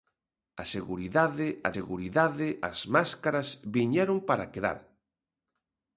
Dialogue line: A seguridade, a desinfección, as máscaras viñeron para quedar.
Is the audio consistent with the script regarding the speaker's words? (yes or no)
no